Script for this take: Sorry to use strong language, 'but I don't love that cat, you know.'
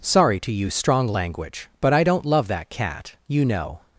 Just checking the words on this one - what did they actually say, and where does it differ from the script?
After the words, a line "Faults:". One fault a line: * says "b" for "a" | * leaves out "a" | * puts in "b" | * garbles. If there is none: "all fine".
Sorry to use strong language, 'but I don't love that cat, you know.'
Faults:
all fine